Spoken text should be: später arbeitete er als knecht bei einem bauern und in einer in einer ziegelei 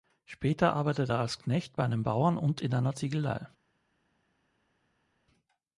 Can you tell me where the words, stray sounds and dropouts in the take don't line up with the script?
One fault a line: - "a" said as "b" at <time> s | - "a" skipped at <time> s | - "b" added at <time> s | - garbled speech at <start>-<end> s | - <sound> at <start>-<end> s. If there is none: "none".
- "in einer" skipped at 3.0 s